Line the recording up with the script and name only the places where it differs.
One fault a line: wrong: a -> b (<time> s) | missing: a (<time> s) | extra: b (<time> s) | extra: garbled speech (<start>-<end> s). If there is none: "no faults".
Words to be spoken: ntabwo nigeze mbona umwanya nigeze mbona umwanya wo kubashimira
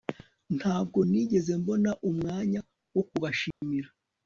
missing: nigeze mbona umwanya (2.6 s)